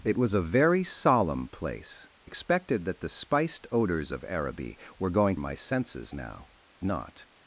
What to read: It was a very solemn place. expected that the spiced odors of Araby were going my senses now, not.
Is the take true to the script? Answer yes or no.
yes